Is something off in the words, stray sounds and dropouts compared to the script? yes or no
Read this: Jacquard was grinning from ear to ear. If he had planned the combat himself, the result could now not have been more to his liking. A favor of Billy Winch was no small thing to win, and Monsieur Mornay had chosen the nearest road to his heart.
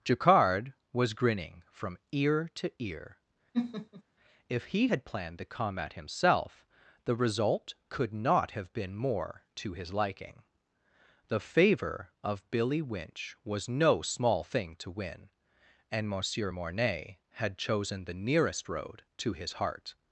yes